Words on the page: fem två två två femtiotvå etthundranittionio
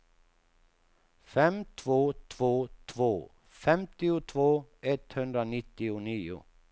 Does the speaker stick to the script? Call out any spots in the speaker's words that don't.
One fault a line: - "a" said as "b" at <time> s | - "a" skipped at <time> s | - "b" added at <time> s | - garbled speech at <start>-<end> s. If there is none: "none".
none